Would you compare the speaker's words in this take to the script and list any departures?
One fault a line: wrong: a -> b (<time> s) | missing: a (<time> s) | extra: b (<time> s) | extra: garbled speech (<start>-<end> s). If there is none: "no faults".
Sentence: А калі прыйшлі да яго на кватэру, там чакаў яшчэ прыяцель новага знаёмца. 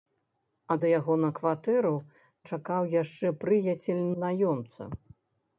missing: калі прыйшлі (0.8 s)
missing: там (1.9 s)
missing: новага (4.0 s)